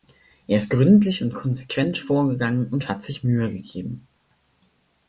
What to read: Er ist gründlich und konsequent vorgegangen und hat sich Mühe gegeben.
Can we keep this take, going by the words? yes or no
yes